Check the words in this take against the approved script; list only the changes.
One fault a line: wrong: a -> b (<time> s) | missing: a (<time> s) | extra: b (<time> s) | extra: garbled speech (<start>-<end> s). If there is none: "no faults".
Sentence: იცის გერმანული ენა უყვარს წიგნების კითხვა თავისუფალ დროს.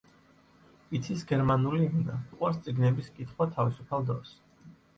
no faults